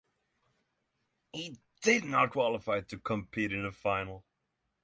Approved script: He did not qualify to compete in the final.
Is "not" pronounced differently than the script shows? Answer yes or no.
no